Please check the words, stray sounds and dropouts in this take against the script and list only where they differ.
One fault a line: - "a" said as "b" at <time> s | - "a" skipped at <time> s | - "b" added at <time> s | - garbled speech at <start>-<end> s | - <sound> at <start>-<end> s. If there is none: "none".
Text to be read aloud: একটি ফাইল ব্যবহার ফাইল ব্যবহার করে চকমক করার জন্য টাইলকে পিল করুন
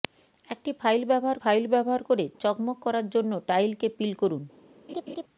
- laugh at 4.9-5.2 s